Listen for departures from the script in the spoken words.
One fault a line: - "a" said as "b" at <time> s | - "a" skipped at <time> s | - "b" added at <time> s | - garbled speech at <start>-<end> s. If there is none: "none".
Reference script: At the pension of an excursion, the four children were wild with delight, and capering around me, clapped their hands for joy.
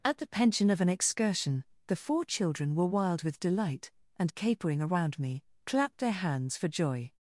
none